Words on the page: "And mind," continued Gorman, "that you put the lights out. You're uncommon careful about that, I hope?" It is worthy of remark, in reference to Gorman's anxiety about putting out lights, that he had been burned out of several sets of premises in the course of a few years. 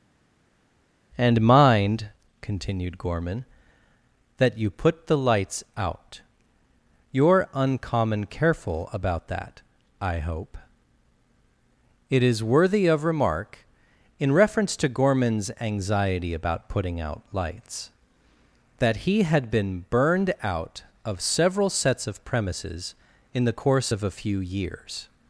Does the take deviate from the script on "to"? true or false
false